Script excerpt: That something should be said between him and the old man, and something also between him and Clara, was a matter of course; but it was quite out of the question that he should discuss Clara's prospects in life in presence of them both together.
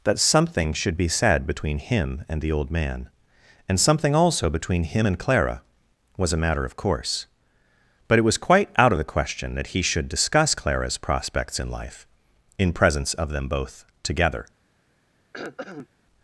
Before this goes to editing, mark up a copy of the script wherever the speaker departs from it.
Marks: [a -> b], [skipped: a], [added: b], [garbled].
That something should be said between him and the old man, and something also between him and Clara, was a matter of course; but it was quite out of the question that he should discuss Clara's prospects in life in presence of them both together.